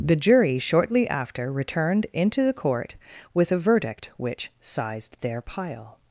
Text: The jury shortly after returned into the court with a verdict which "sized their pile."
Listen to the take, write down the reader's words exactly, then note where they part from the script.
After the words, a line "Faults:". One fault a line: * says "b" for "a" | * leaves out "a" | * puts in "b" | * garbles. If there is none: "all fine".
The jury shortly after returned into the court with a verdict which "sized their pile."
Faults:
all fine